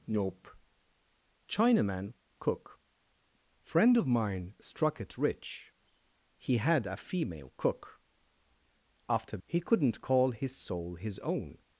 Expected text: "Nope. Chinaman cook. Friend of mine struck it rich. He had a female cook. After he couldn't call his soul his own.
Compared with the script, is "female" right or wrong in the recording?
right